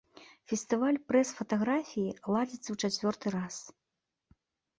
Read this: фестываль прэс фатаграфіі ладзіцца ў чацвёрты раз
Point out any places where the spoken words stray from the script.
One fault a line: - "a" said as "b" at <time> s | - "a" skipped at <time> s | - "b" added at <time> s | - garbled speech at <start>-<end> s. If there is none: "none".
none